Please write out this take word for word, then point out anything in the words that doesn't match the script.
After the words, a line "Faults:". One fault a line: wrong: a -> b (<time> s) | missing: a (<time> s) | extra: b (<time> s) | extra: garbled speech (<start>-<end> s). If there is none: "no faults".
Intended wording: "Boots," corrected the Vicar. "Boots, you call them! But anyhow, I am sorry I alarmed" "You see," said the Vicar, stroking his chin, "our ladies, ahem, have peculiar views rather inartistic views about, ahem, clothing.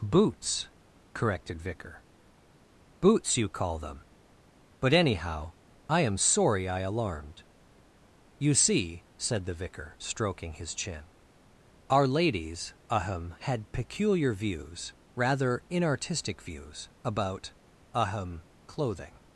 "Boots," corrected Vicar. "Boots, you call them! But anyhow, I am sorry I alarmed" "You see," said the Vicar, stroking his chin, "our ladies, ahem, had peculiar views rather inartistic views about, ahem, clothing.
Faults:
missing: the (1.6 s)
wrong: have -> had (13.4 s)